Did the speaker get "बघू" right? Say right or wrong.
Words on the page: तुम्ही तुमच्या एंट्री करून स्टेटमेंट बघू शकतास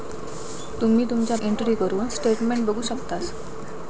right